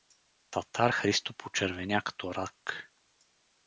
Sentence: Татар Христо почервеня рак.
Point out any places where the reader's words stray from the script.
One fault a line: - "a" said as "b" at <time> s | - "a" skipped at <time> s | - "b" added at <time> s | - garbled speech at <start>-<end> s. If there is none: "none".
- "като" added at 2.0 s